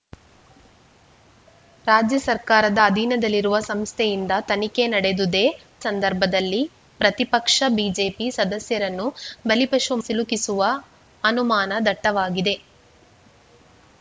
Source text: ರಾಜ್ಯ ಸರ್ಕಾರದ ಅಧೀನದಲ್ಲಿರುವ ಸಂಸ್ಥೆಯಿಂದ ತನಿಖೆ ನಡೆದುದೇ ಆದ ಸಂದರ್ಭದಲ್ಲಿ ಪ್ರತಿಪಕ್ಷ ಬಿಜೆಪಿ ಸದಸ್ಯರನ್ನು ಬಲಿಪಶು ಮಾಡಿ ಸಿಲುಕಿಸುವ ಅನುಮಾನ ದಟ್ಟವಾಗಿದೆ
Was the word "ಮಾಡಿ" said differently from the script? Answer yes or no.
yes